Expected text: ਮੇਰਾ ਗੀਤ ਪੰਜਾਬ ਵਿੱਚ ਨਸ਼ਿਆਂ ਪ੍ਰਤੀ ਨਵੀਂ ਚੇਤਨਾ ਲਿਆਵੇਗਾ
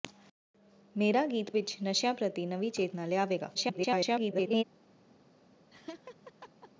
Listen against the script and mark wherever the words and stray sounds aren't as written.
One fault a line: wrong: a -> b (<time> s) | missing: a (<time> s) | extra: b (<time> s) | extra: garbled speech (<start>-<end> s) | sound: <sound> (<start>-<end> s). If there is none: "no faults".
missing: ਪੰਜਾਬ (1.5 s)
extra: garbled speech (3.5-4.6 s)
sound: laugh (5.7-6.7 s)